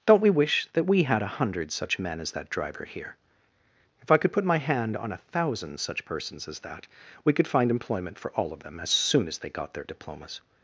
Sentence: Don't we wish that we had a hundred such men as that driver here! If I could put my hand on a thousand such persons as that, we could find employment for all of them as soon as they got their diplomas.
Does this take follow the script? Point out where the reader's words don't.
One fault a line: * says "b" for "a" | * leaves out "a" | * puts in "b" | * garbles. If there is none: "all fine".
all fine